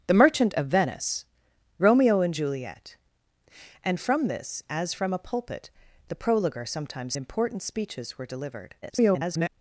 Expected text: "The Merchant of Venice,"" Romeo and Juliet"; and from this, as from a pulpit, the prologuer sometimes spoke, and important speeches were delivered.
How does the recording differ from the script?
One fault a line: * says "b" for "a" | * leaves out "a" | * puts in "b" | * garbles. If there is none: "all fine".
* leaves out "spoke and"
* garbles